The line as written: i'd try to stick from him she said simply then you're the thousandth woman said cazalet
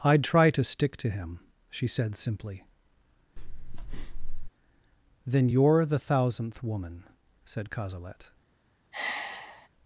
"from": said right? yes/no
no